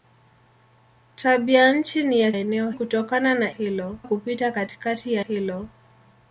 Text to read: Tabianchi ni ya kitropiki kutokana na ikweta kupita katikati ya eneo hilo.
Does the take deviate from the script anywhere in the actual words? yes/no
yes